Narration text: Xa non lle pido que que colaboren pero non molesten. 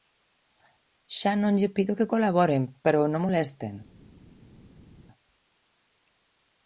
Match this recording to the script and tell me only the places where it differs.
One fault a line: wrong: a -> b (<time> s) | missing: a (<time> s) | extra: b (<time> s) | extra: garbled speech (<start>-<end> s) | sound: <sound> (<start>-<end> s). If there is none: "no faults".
missing: que (2.1 s)